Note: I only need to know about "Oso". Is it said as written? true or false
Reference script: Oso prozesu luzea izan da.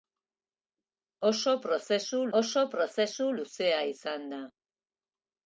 true